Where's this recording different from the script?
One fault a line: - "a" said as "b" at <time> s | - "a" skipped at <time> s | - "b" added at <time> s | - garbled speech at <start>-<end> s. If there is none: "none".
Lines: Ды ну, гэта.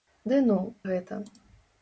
none